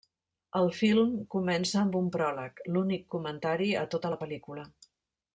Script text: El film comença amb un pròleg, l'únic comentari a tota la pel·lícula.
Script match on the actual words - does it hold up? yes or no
yes